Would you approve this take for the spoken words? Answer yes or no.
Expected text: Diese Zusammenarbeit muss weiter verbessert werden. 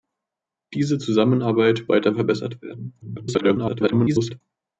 no